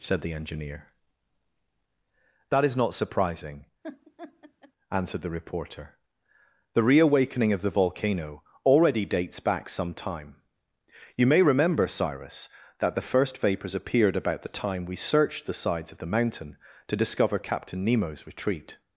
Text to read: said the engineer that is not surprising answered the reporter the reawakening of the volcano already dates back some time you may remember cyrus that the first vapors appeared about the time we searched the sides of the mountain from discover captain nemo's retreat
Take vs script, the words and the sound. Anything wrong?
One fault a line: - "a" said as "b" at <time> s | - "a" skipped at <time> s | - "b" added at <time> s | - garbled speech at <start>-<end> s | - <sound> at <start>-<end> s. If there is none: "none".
- laugh at 3.8-4.7 s
- "from" said as "to" at 16.9 s